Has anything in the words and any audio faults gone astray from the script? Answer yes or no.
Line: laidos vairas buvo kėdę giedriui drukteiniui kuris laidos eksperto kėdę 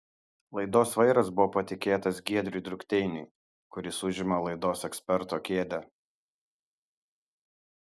yes